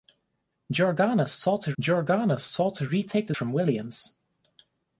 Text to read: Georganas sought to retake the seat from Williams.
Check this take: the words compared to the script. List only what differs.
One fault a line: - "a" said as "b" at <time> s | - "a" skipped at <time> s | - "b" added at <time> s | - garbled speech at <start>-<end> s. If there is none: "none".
- "georganas sought to" added at 1.8 s
- "seat" skipped at 3.4 s